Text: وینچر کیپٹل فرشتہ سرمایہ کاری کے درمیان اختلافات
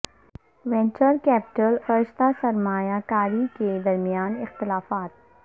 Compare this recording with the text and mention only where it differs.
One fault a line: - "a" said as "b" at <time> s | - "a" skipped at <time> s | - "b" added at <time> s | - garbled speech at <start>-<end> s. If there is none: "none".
none